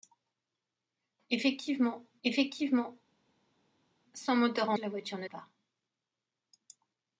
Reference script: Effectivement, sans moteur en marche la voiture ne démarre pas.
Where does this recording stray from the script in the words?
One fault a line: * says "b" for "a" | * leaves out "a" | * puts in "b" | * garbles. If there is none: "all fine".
* puts in "effectivement"
* leaves out "marche"
* leaves out "démarre"